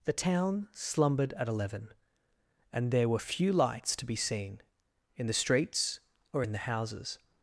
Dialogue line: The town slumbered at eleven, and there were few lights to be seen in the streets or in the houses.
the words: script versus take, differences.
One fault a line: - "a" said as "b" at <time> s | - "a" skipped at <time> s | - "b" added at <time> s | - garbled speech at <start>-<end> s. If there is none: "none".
none